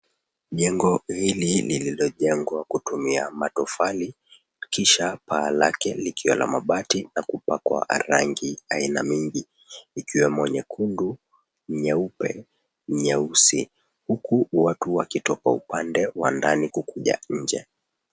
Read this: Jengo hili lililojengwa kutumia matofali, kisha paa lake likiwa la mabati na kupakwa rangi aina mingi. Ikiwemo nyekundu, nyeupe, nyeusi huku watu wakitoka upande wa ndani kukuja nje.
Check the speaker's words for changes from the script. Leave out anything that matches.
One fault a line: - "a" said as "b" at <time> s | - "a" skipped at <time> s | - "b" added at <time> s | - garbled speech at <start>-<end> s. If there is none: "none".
none